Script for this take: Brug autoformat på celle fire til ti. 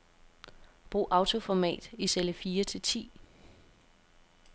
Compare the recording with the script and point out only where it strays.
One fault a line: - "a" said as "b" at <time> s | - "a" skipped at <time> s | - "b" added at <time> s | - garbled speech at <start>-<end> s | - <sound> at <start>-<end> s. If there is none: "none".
- "på" said as "i" at 1.9 s